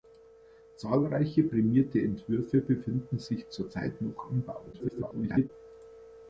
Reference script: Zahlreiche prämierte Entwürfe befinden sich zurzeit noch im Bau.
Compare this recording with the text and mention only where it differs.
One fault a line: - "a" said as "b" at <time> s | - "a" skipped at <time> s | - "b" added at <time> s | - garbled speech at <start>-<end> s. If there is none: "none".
- garbled speech at 4.7-5.5 s